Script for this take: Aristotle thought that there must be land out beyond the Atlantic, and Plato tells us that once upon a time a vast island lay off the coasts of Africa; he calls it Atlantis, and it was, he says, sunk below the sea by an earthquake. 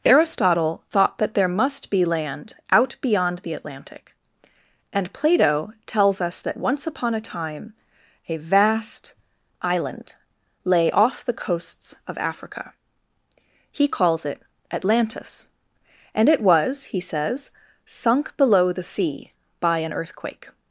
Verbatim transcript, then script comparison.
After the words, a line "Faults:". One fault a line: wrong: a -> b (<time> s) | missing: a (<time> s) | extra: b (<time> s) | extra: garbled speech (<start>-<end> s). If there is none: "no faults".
Aristotle thought that there must be land out beyond the Atlantic, and Plato tells us that once upon a time a vast island lay off the coasts of Africa; he calls it Atlantis, and it was, he says, sunk below the sea by an earthquake.
Faults:
no faults